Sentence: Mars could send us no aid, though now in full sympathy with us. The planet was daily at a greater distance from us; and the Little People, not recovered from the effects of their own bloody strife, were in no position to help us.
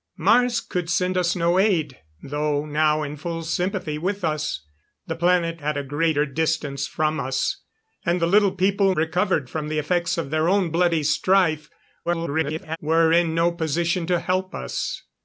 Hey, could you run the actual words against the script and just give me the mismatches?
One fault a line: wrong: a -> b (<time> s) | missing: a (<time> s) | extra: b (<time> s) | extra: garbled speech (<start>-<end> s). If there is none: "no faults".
missing: was daily (5.6 s)
missing: not (8.9 s)
extra: garbled speech (12.1-12.8 s)